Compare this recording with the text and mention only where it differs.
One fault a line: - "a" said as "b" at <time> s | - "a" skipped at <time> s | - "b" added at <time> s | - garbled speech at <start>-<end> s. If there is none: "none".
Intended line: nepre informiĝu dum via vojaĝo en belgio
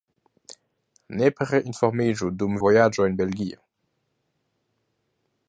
- "via" skipped at 2.6 s